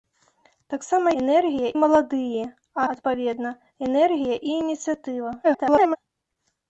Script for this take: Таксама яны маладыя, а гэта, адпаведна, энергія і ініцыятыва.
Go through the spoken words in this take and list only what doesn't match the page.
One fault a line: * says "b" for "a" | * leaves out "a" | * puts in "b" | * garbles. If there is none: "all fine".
* says "энергія" for "яны"
* leaves out "гэта"
* garbles